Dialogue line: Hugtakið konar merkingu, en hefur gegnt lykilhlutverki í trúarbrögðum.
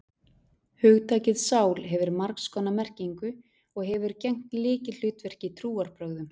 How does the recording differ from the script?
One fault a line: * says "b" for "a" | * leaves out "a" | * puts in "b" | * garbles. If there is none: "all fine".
* puts in "sál hefur margs"
* says "og" for "en"